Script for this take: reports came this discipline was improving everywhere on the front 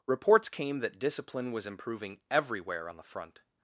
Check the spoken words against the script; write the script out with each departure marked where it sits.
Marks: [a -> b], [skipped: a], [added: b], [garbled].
reports came [this -> that] discipline was improving everywhere on the front